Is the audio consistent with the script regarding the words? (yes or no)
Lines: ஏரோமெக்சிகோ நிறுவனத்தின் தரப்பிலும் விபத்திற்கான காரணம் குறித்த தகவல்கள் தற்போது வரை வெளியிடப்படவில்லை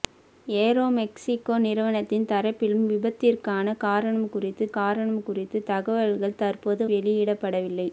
no